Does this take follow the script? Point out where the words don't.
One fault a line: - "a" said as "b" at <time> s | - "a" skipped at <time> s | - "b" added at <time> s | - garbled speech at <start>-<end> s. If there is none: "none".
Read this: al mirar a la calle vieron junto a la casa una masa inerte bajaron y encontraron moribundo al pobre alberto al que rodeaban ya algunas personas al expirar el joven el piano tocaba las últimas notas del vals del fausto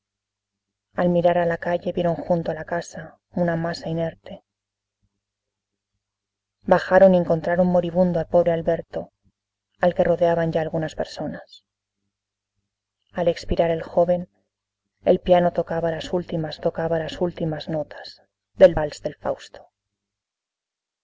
- "tocaba las últimas" added at 16.6 s